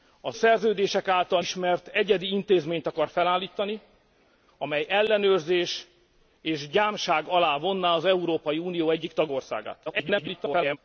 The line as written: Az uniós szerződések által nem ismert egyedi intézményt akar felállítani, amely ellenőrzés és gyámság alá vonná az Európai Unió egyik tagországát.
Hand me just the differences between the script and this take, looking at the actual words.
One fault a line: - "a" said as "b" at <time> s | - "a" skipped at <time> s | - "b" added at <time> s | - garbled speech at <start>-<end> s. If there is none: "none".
- "uniós" skipped at 0.4 s
- "nem" skipped at 1.4 s
- garbled speech at 9.9-10.8 s